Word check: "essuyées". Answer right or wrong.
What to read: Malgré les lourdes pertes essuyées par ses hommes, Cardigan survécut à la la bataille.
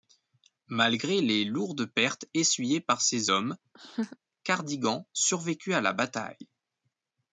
right